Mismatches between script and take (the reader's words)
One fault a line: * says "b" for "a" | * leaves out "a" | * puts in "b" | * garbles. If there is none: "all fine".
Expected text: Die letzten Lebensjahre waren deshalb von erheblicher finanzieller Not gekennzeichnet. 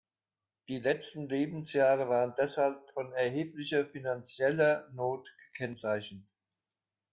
all fine